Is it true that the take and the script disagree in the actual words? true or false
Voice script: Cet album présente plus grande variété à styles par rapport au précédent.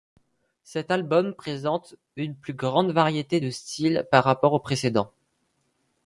true